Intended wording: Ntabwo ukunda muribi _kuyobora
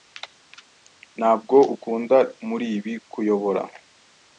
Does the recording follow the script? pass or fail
pass